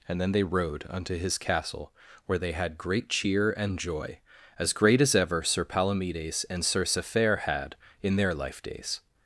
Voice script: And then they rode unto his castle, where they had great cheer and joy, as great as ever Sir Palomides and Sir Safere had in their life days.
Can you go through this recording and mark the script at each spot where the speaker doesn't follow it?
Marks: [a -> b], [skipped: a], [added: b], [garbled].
And then they rode unto his castle, where they had great cheer and joy, as great as ever Sir Palomides and Sir Safere had in their life days.